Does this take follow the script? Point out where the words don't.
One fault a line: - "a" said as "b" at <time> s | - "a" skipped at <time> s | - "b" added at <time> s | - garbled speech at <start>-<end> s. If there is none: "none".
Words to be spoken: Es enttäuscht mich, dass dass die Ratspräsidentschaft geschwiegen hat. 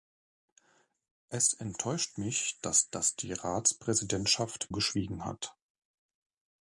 none